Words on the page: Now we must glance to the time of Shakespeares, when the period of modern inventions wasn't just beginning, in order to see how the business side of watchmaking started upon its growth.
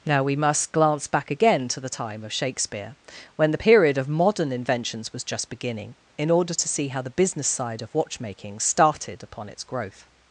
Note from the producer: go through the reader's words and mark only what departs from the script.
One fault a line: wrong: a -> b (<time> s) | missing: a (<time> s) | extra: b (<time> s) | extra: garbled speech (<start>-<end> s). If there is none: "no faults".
extra: back again (1.1 s)
wrong: Shakespeares -> Shakespeare (2.3 s)
wrong: wasn't -> was (5.1 s)